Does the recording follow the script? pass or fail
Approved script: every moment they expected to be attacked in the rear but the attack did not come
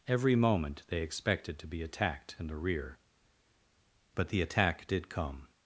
fail